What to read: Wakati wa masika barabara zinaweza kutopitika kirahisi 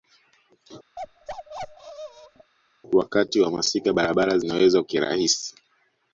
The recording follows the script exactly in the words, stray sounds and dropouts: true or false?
false